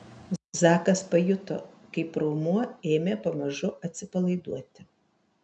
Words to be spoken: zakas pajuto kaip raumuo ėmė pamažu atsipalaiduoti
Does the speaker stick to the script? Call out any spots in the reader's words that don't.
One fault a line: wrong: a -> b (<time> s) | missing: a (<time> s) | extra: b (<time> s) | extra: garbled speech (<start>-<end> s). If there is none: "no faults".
no faults